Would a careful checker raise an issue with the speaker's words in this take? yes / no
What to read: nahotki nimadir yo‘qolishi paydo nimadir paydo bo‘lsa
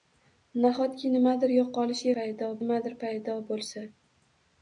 no